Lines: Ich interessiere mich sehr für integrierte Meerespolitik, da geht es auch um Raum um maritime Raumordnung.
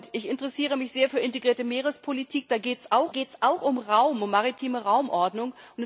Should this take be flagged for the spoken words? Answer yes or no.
yes